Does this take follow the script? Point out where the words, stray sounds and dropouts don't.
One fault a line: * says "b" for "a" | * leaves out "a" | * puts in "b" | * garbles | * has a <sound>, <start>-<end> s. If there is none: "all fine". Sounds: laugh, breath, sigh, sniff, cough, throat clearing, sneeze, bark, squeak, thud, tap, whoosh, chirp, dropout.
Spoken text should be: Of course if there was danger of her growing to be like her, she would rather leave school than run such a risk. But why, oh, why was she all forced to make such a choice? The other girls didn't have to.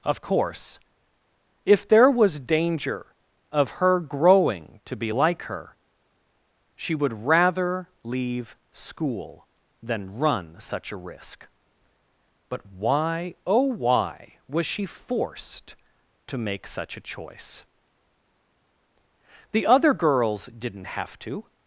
* leaves out "all"